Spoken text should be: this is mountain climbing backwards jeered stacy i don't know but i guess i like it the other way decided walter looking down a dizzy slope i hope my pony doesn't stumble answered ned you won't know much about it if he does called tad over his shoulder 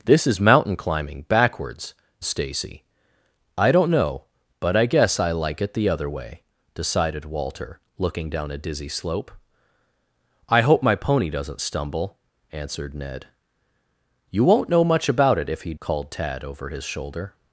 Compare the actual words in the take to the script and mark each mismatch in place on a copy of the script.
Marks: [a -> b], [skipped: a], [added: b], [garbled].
this is mountain climbing backwards [skipped: jeered] stacy i don't know but i guess i like it the other way decided walter looking down a dizzy slope i hope my pony doesn't stumble answered ned you won't know much about it if he [skipped: does] called tad over his shoulder